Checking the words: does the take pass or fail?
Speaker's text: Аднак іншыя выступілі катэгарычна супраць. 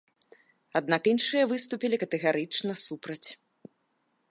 pass